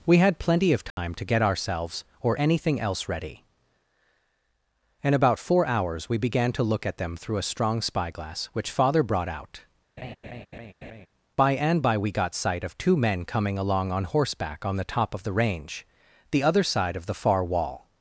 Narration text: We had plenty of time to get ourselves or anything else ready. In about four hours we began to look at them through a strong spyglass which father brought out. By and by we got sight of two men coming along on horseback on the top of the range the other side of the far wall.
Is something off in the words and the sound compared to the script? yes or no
yes